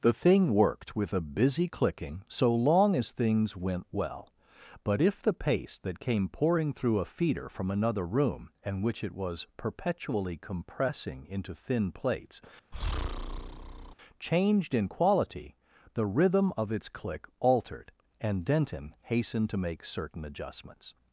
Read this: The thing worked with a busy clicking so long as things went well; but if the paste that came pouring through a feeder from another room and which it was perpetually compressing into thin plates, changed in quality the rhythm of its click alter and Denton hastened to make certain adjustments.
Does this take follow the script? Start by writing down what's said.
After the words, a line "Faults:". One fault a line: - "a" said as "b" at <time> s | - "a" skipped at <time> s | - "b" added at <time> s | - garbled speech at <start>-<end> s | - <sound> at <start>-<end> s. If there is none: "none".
The thing worked with a busy clicking so long as things went well; but if the paste that came pouring through a feeder from another room and which it was perpetually compressing into thin plates, changed in quality the rhythm of its click altered and Denton hastened to make certain adjustments.
Faults:
- breath at 12.7-14.0 s
- "alter" said as "altered" at 17.4 s